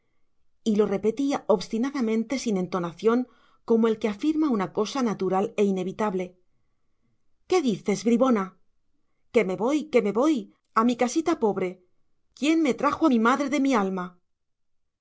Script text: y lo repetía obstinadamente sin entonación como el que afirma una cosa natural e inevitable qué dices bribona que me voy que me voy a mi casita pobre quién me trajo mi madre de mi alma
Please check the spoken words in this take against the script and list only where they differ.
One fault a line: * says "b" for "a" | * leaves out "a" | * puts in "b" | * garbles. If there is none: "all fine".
all fine